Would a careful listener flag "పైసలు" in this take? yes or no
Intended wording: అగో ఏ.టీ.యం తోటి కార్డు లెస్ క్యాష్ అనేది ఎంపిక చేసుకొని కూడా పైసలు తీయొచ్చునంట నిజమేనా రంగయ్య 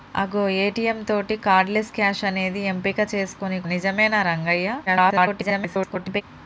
yes